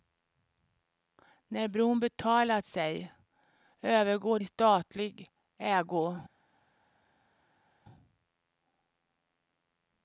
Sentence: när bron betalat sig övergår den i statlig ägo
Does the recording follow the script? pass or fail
fail